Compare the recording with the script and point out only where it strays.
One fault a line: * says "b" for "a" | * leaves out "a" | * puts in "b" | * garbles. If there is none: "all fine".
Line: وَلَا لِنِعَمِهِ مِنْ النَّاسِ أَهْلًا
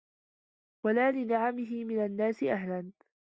all fine